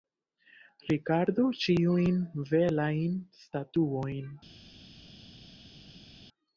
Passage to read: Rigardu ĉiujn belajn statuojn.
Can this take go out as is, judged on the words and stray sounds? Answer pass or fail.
pass